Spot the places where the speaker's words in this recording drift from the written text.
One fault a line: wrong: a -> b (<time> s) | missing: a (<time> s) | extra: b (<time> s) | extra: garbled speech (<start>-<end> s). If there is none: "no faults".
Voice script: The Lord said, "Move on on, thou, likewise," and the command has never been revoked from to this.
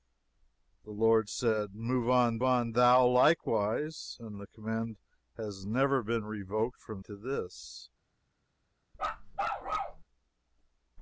no faults